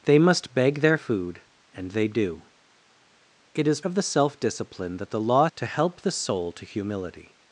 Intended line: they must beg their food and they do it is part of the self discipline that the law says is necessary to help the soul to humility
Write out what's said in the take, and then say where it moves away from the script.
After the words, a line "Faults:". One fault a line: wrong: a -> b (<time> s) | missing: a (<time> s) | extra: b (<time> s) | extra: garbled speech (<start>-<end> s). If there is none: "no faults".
they must beg their food and they do it is of the self discipline that the law to help the soul to humility
Faults:
missing: part (3.8 s)
missing: says is necessary (5.5 s)